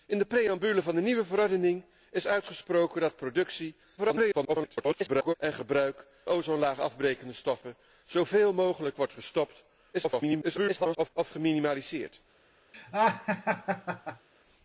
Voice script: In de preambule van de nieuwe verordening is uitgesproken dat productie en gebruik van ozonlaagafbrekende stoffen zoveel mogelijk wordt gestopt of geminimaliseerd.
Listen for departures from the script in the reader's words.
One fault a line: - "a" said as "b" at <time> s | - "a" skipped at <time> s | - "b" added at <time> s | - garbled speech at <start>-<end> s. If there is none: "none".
- garbled speech at 4.0-5.3 s
- "van" skipped at 6.1 s
- garbled speech at 9.9-11.1 s